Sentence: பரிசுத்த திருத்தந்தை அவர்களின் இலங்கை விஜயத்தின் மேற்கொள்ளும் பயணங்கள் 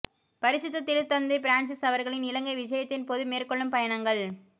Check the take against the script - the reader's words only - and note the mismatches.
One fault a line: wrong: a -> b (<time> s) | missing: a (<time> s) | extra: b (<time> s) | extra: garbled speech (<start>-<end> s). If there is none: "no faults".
extra: பிரான்சிஸ் (1.4 s)
extra: போது (3.1 s)